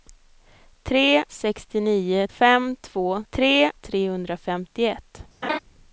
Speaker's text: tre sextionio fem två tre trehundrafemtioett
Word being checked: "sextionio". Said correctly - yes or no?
yes